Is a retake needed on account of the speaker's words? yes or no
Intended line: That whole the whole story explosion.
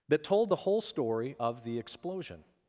yes